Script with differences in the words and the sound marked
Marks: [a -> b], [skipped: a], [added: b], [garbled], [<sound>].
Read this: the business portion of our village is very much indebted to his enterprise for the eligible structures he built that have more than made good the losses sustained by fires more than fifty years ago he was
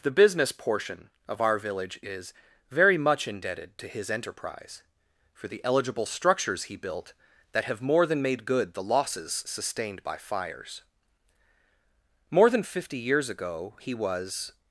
the business portion of our village is very much indebted to his enterprise for the eligible structures he built that have more than made good the losses sustained by fires more than fifty years ago he was